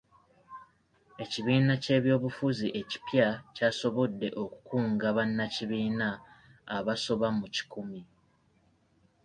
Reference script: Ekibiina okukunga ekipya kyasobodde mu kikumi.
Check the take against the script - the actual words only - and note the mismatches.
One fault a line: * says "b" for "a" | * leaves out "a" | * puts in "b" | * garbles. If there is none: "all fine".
* says "ky'ebyobufuzi" for "okukunga"
* puts in "okukunga bannakibiina abasoba"